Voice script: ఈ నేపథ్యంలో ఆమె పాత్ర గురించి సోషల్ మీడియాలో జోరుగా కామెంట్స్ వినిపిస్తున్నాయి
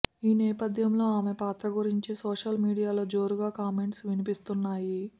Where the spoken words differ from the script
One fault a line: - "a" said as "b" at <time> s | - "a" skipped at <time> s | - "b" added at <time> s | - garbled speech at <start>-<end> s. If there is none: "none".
none